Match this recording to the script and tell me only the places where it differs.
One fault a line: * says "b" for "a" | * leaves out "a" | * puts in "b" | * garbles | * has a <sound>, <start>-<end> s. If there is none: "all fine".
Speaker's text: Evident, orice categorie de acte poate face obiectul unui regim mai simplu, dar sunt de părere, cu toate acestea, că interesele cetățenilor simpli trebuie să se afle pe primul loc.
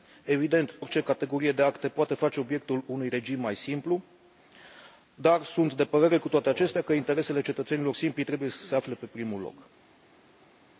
all fine